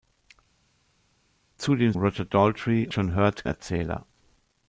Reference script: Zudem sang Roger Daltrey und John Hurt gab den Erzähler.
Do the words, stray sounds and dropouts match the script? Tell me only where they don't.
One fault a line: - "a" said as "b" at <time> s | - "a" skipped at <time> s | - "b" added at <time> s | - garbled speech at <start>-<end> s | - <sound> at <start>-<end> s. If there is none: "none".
- "sang" skipped at 1.9 s
- "und" skipped at 2.9 s
- "gab den" skipped at 3.5 s